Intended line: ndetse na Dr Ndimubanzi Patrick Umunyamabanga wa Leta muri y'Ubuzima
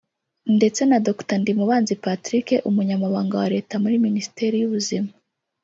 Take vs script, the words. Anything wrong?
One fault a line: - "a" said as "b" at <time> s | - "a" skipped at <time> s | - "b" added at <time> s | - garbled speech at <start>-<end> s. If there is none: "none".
- "minisiteri" added at 4.1 s